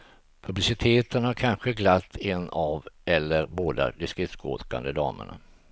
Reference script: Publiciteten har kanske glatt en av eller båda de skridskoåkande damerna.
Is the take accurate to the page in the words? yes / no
yes